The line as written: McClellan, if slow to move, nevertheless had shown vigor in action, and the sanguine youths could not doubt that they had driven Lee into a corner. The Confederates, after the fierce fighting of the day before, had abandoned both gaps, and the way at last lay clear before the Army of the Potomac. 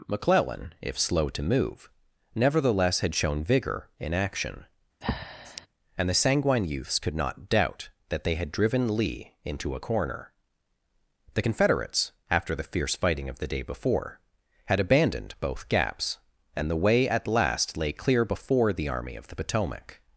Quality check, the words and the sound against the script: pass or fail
fail